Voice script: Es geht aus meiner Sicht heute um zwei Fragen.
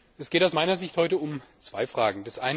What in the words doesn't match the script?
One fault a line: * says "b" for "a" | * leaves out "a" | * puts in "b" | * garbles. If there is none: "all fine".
all fine